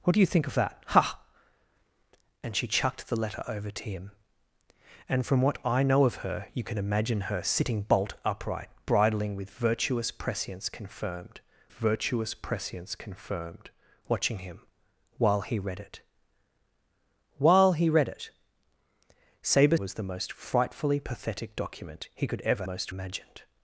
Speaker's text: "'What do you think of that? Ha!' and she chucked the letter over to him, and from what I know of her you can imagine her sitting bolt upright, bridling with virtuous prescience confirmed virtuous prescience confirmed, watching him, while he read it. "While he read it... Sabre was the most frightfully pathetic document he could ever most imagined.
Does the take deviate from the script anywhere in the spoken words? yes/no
no